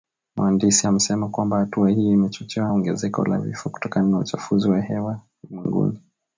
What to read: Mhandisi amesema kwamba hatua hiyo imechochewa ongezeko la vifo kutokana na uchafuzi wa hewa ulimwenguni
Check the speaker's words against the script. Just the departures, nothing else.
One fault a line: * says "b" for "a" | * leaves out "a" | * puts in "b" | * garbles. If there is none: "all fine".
all fine